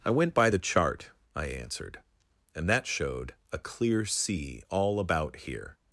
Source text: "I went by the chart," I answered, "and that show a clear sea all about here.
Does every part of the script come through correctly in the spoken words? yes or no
no